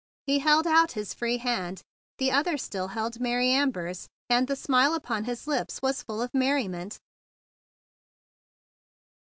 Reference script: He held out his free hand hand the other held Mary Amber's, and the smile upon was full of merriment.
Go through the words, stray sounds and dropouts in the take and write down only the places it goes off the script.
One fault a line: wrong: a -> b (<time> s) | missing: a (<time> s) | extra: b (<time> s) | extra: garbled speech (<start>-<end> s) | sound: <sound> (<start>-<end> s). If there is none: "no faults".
missing: hand (1.8 s)
extra: still (2.6 s)
extra: his lips (5.2 s)